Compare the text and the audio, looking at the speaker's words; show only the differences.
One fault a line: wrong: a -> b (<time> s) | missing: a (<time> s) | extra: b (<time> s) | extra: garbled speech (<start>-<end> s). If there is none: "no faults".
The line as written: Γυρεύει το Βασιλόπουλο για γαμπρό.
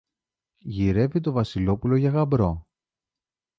no faults